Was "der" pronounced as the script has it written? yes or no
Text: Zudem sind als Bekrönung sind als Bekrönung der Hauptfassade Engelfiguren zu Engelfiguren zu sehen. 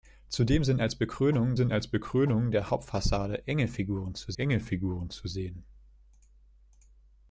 yes